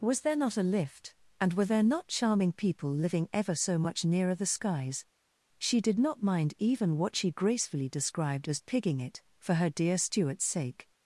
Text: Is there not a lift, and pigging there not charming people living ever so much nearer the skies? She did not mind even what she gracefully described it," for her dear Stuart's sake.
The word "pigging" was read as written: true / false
false